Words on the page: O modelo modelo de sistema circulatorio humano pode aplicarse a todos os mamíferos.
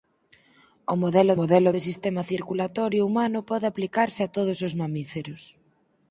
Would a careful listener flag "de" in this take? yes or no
no